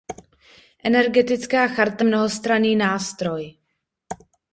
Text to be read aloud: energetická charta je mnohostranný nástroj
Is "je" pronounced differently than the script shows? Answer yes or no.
yes